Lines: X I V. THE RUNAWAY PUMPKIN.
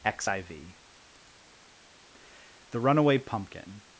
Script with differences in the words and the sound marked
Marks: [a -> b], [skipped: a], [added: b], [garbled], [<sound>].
X I V. THE RUNAWAY PUMPKIN.